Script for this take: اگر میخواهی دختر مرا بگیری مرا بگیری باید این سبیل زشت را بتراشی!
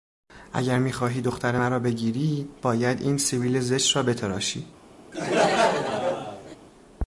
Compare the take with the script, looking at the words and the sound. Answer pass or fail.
fail